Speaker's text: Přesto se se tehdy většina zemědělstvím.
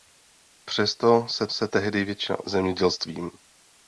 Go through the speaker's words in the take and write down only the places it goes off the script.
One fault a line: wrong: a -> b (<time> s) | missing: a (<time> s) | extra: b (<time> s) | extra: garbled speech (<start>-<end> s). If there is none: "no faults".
no faults